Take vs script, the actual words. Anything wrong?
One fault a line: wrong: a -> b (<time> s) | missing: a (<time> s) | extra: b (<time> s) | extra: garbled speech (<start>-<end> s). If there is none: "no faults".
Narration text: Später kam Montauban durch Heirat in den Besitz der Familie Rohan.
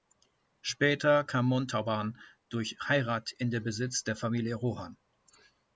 no faults